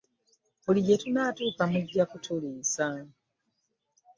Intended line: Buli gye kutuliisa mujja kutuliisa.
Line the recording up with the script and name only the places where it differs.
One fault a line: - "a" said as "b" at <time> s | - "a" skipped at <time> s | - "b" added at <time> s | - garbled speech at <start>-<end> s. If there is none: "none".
- "kutuliisa" said as "tunaatuuka" at 1.0 s